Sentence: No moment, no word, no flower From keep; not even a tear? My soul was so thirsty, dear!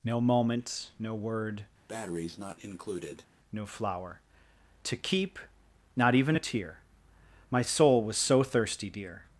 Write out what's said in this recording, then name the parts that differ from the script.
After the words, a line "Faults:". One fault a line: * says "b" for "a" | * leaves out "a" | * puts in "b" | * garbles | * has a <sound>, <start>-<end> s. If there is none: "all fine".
No moment, no word, no flower To keep; not even a tear? My soul was so thirsty, dear!
Faults:
* has a breath, 1.9-3.3 s
* says "To" for "From"